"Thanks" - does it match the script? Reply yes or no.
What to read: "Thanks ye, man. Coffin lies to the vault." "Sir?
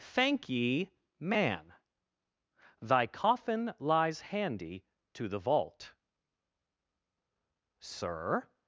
no